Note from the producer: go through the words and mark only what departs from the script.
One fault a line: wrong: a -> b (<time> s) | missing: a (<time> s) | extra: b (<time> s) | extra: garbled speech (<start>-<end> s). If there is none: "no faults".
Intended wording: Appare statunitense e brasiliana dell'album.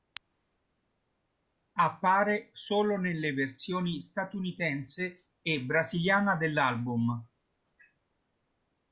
extra: solo nelle versioni (2.5 s)